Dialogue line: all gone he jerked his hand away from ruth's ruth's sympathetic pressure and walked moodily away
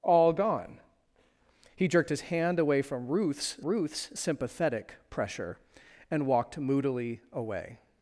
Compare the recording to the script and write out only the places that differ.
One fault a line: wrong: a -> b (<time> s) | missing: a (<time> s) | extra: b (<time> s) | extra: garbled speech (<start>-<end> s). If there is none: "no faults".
no faults